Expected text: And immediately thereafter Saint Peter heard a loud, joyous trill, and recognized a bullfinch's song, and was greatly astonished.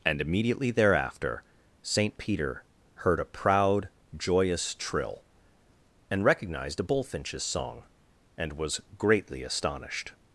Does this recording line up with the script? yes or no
no